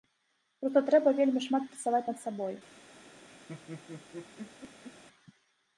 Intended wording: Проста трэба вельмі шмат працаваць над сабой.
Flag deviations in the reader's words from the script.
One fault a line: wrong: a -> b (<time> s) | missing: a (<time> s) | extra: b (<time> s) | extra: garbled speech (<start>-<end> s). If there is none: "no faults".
no faults